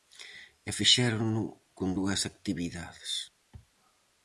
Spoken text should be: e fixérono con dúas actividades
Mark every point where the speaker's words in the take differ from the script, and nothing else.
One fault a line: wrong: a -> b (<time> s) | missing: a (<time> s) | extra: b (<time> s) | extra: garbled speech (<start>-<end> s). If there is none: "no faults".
no faults